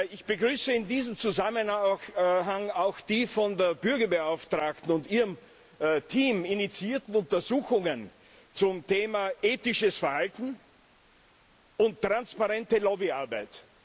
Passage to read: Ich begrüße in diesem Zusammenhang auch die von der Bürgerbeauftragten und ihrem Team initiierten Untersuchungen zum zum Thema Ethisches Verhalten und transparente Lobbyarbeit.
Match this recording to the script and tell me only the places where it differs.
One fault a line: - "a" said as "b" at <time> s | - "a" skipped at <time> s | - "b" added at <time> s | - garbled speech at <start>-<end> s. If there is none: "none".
- "zum" skipped at 8.9 s